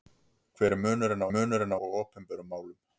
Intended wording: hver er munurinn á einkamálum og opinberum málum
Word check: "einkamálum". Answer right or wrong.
wrong